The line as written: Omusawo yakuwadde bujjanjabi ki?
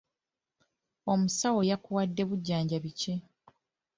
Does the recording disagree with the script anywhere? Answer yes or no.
no